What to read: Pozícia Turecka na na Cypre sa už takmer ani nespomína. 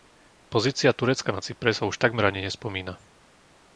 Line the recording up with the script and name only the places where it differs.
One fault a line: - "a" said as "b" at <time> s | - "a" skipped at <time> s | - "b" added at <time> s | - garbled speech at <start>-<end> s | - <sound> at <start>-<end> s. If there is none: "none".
- "na" skipped at 1.4 s